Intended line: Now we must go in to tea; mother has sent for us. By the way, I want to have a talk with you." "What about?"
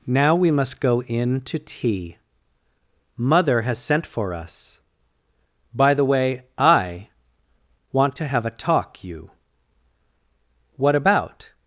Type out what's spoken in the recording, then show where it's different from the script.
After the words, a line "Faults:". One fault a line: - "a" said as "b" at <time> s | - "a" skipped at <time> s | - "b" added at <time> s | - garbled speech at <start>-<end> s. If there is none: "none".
Now we must go in to tea; mother has sent for us. By the way, I want to have a talk you." "What about?"
Faults:
- "with" skipped at 9.0 s